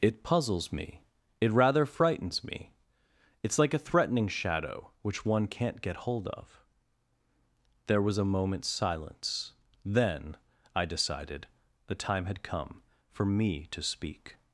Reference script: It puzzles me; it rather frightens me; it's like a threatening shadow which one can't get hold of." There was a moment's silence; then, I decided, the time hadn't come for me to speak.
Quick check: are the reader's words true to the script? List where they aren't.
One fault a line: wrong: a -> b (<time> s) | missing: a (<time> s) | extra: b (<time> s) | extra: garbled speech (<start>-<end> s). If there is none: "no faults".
wrong: hadn't -> had (12.3 s)